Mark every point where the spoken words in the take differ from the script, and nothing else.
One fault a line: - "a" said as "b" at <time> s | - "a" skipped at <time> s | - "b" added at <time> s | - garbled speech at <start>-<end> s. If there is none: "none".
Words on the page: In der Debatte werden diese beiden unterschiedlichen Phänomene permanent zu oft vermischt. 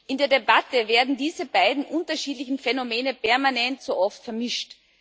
none